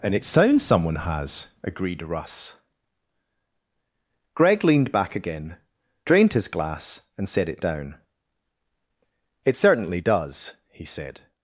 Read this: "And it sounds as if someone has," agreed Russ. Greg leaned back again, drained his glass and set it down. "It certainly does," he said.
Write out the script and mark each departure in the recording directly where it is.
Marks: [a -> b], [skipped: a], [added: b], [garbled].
"And it sounds [skipped: as if] someone has," agreed Russ. Greg leaned back again, drained his glass and set it down. "It certainly does," he said.